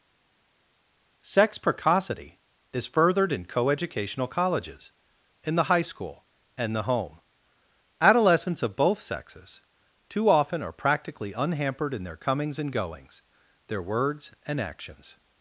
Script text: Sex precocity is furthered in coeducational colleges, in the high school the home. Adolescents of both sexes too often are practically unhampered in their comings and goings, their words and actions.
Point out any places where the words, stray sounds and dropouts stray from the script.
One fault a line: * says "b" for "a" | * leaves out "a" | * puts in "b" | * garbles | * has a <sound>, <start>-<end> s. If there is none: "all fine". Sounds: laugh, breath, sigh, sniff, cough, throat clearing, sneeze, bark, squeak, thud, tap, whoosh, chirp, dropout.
* puts in "and"